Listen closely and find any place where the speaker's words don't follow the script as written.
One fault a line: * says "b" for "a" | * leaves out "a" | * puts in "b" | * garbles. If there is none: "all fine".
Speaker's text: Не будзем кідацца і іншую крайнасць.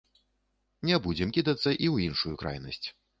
* puts in "ў"